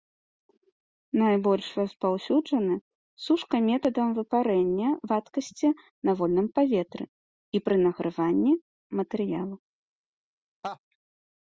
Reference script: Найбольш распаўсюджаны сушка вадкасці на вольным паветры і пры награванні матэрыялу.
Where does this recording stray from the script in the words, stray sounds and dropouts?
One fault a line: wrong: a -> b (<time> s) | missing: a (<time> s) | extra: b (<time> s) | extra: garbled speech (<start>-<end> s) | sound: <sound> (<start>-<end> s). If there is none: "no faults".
extra: метадам выпарэння (3.7 s)
sound: laugh (10.6-10.8 s)